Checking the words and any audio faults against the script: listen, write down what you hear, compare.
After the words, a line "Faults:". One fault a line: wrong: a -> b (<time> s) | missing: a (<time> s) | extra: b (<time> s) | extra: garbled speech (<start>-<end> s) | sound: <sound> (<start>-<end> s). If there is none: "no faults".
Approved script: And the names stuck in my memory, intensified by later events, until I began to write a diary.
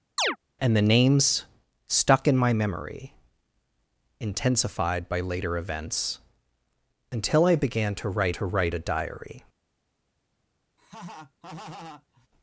And the names stuck in my memory, intensified by later events, until I began to write to write a diary.
Faults:
sound: chirp (0.2-0.4 s)
extra: to write (8.3 s)
sound: laugh (10.8-12.3 s)